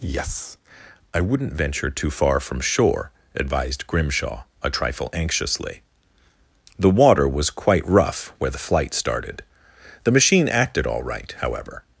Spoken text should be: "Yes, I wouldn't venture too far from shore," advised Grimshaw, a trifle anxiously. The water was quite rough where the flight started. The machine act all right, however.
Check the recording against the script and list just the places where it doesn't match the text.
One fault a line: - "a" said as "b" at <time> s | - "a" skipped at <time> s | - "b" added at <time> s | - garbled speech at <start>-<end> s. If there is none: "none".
- "act" said as "acted" at 10.5 s